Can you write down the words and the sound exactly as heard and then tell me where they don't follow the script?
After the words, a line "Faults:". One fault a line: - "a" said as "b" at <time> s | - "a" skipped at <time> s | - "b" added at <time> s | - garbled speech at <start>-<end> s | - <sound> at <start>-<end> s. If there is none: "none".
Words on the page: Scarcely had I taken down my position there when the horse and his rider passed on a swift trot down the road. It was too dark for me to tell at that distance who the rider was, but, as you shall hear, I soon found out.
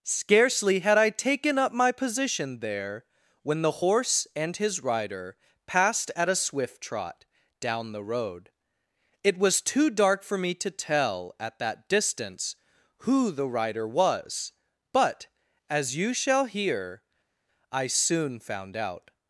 Scarcely had I taken up my position there when the horse and his rider passed at a swift trot down the road. It was too dark for me to tell at that distance who the rider was, but, as you shall hear, I soon found out.
Faults:
- "down" said as "up" at 1.6 s
- "on" said as "at" at 6.2 s